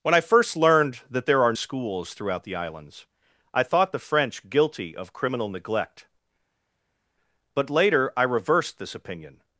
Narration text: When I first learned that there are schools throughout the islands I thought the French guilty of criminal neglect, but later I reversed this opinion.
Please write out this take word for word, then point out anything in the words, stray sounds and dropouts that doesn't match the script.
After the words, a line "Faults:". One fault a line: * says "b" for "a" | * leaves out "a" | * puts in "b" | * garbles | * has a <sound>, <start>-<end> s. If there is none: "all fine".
When I first learned that there are schools throughout the islands I thought the French guilty of criminal neglect, but later I reversed this opinion.
Faults:
all fine